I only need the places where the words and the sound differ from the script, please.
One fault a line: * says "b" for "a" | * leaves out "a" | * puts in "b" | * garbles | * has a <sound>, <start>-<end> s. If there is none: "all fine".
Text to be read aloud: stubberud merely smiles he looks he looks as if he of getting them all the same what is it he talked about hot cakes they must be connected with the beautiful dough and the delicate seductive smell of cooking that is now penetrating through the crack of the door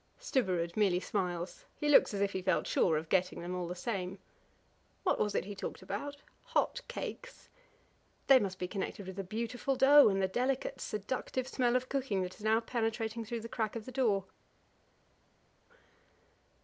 * leaves out "he looks"
* puts in "felt sure"
* says "was" for "is"